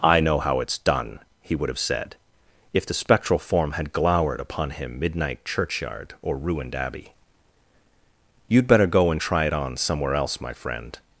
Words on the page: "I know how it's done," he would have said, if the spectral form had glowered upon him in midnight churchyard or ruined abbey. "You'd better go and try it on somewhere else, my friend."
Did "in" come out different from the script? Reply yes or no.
yes